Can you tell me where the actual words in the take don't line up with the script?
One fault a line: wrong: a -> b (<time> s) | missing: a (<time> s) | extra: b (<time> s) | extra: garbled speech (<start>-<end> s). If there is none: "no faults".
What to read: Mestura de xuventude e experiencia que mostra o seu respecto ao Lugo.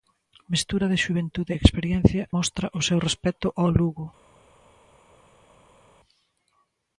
missing: que (2.2 s)